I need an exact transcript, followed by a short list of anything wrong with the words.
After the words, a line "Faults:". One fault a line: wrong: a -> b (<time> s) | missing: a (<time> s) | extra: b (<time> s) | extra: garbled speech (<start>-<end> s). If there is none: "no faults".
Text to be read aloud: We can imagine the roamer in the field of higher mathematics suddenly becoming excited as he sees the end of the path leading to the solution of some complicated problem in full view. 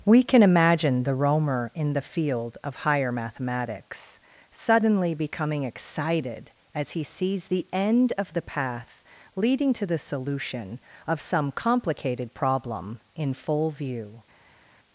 We can imagine the roamer in the field of higher mathematics suddenly becoming excited as he sees the end of the path leading to the solution of some complicated problem in full view.
Faults:
no faults